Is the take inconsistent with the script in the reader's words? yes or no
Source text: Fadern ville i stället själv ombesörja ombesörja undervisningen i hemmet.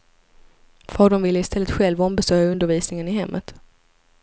yes